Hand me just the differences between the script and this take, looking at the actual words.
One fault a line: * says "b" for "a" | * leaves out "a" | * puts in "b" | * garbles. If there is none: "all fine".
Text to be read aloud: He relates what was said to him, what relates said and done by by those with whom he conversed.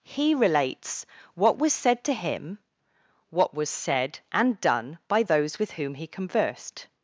* says "was" for "relates"
* leaves out "by"